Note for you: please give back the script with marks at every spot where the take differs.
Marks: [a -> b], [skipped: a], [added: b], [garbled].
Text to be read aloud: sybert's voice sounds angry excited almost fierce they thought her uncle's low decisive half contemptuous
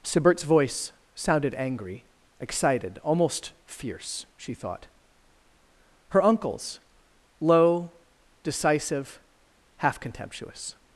sybert's voice [sounds -> sounded] angry excited almost fierce [they -> she] thought her uncle's low decisive half contemptuous